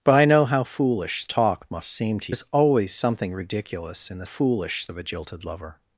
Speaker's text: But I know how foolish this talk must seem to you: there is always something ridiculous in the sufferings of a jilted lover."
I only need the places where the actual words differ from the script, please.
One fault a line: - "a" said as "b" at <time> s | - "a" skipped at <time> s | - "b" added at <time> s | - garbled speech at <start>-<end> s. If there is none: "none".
- "this" skipped at 1.2 s
- "you there" skipped at 2.3 s
- "sufferings" said as "foolish" at 4.2 s